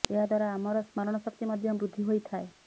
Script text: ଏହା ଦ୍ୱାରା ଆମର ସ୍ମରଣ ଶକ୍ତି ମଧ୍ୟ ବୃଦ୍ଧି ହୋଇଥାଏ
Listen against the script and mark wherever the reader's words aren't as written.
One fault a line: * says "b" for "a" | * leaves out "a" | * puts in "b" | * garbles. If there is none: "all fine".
all fine